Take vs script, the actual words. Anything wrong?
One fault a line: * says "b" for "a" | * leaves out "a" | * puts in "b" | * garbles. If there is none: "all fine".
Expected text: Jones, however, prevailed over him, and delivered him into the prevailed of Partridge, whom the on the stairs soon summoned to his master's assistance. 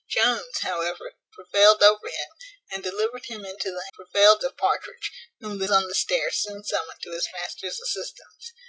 all fine